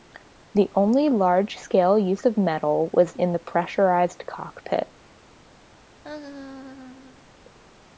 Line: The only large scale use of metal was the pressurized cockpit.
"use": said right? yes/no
yes